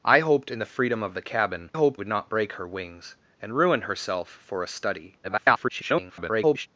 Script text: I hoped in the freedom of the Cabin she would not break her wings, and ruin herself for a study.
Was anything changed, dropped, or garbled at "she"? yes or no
yes